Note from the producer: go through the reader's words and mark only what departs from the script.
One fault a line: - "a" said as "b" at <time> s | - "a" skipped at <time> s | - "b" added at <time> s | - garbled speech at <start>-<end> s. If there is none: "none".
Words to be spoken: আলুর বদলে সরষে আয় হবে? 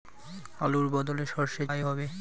none